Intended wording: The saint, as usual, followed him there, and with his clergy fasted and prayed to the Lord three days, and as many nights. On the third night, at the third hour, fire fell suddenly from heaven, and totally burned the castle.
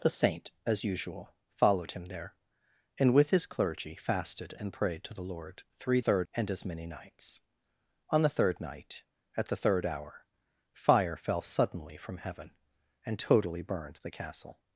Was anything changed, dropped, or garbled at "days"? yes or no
yes